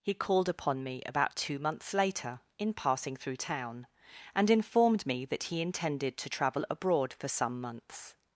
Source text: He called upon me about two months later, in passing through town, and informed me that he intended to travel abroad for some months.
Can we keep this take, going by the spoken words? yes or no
yes